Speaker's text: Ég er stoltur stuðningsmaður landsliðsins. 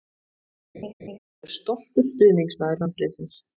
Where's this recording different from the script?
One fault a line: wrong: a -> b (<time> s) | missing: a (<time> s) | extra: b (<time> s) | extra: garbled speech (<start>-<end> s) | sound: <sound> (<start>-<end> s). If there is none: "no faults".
sound: laugh (0.7-1.2 s)